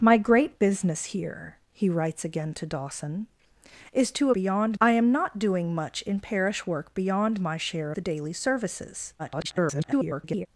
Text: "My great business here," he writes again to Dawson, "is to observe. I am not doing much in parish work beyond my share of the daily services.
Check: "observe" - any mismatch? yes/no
yes